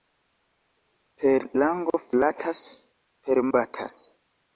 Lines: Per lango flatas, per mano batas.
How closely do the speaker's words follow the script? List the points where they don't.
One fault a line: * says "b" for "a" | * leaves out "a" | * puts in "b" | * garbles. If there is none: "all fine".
* leaves out "mano"